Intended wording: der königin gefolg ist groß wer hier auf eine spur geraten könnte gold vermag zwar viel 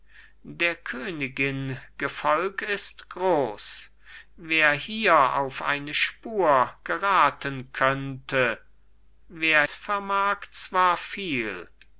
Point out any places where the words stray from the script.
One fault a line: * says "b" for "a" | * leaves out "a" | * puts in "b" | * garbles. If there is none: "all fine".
* says "wer" for "gold"